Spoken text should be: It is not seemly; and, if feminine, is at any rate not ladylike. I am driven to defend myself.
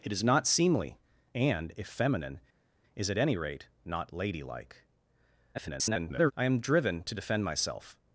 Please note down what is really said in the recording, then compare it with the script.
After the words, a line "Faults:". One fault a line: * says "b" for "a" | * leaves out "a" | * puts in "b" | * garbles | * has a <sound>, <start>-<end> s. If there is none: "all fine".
It is not seemly; and, if feminine, is at any rate not ladylike. [garbled] I am driven to defend myself.
Faults:
* garbles